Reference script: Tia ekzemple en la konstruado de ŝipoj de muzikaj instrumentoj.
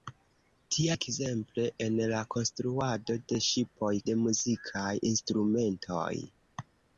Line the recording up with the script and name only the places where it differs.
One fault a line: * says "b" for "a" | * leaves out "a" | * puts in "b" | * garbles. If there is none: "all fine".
all fine